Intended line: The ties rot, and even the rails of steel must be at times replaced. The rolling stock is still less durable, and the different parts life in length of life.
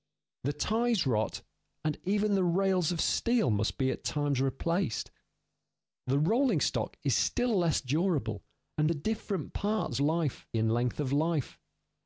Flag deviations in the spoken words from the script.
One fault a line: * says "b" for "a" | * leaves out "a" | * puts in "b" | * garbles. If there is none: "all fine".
all fine